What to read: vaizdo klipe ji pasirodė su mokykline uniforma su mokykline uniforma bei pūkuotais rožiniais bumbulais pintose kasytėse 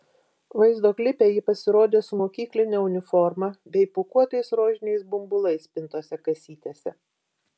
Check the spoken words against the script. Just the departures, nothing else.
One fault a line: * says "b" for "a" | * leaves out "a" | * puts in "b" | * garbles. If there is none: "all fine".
* leaves out "su mokykline uniforma"